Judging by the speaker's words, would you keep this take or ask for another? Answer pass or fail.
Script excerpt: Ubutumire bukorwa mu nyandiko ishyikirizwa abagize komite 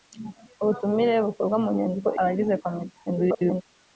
fail